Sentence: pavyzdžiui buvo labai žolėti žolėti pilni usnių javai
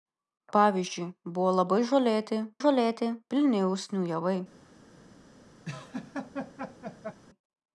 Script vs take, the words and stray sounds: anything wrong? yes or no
yes